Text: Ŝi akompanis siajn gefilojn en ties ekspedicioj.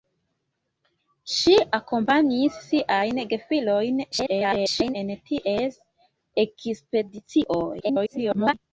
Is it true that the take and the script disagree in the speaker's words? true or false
true